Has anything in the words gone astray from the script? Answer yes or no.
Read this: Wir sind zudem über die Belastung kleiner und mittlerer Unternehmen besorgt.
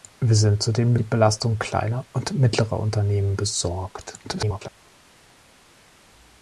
yes